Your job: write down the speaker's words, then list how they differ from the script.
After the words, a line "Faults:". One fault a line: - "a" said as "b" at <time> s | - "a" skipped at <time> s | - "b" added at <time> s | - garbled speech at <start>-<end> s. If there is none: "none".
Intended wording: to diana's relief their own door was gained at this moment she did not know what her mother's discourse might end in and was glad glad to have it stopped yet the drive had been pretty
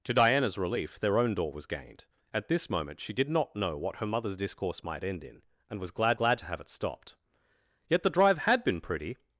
to diana's relief their own door was gained at this moment she did not know what her mother's discourse might end in and was glad glad to have it stopped yet the drive had been pretty
Faults:
none